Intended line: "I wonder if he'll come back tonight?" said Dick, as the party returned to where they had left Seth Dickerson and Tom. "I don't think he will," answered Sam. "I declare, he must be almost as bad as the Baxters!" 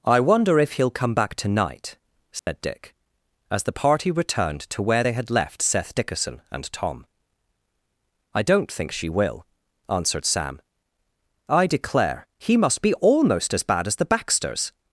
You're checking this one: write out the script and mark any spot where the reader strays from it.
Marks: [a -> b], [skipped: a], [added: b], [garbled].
"I wonder if he'll come back tonight?" said Dick, as the party returned to where they had left Seth Dickerson and Tom. "I don't think [he -> she] will," answered Sam. "I declare, he must be almost as bad as the Baxters!"